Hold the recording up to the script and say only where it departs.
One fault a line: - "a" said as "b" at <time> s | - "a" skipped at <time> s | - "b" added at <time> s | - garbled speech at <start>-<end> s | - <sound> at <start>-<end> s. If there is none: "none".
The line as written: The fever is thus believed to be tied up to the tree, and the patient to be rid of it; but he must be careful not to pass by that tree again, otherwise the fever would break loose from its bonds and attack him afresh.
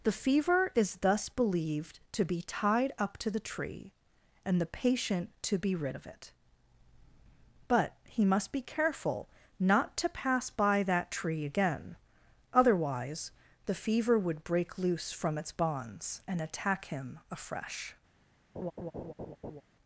- laugh at 18.5-19.6 s